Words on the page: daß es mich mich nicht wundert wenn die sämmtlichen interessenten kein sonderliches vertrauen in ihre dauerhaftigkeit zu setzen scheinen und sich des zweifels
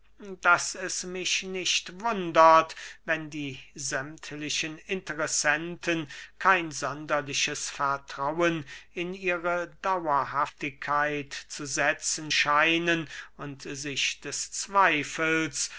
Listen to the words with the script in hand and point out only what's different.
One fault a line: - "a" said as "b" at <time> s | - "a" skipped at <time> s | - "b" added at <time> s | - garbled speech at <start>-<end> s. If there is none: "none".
- "mich" skipped at 1.4 s